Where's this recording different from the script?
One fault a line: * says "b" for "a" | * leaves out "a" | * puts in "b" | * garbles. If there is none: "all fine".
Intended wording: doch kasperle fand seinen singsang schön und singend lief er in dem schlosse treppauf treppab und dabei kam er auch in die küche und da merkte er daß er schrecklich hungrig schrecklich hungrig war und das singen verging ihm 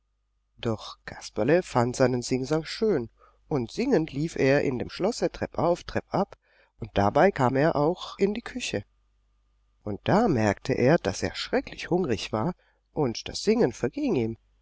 * leaves out "schrecklich hungrig"